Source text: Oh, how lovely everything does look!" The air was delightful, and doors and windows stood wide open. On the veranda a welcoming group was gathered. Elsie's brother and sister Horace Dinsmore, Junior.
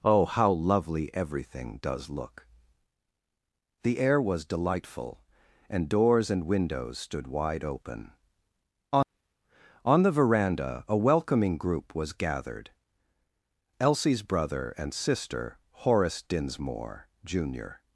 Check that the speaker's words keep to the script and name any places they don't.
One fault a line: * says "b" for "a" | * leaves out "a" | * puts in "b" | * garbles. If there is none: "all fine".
* puts in "On"